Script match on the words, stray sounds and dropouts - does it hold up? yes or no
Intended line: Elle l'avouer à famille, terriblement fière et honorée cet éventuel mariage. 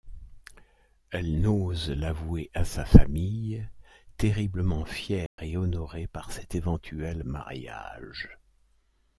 no